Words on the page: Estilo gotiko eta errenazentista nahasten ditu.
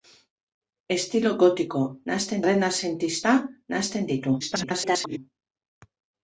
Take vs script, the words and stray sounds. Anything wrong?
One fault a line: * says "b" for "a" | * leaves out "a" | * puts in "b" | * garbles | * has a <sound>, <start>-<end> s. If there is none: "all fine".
* says "nahasten" for "eta"
* garbles